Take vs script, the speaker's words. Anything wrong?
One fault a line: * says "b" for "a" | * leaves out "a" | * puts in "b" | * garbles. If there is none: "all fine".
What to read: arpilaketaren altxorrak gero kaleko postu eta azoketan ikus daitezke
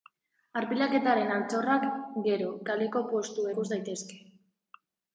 * leaves out "eta azoketan"